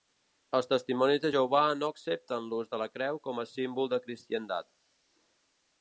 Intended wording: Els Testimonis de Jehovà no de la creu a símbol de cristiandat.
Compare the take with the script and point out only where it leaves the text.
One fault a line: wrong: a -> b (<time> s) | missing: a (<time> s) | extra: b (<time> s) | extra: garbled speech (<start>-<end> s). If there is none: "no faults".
extra: accepten l'ús (1.9 s)
extra: com (3.3 s)